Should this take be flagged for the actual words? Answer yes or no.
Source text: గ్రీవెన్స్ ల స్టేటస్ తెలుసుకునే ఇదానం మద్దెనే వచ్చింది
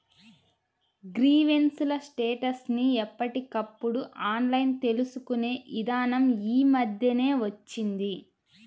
yes